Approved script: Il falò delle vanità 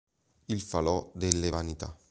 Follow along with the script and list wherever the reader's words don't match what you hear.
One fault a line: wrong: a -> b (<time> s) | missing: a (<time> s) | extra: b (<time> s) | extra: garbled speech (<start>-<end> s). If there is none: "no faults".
no faults